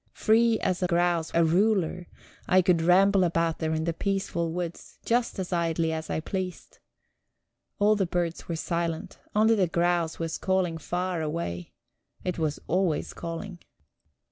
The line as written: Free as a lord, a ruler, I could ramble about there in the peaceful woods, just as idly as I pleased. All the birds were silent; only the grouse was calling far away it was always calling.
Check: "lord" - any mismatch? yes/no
yes